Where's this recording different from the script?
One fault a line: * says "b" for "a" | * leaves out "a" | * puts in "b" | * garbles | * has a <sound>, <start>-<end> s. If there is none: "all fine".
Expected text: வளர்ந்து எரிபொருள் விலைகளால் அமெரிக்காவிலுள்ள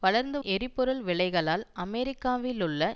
all fine